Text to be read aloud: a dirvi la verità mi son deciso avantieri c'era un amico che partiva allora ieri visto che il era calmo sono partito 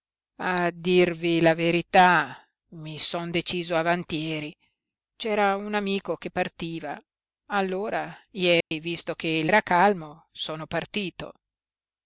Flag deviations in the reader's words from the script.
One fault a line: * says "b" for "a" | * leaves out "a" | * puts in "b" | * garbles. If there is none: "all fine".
all fine